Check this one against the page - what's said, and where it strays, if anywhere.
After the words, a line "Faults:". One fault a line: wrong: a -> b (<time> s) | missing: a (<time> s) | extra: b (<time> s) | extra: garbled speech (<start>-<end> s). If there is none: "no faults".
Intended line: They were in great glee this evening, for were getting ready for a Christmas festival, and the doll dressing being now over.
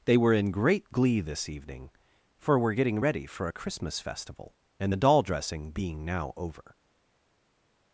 They were in great glee this evening, for were getting ready for a Christmas festival, and the doll dressing being now over.
Faults:
no faults